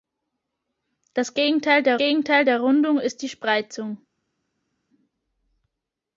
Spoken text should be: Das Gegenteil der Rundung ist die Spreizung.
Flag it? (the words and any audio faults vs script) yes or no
yes